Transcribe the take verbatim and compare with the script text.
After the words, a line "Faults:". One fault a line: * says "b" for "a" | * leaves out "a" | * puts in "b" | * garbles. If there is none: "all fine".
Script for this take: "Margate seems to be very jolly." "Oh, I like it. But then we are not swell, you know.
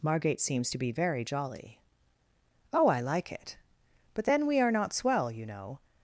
"Margate seems to be very jolly." "Oh, I like it. But then we are not swell, you know.
Faults:
all fine